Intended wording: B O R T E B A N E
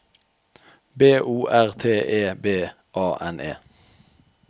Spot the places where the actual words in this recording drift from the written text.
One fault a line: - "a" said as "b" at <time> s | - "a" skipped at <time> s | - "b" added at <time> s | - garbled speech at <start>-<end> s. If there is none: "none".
none